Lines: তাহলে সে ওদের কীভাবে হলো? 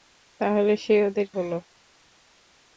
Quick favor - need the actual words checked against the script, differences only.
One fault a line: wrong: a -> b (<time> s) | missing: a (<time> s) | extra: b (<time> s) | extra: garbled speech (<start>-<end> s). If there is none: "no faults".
missing: কীভাবে (1.3 s)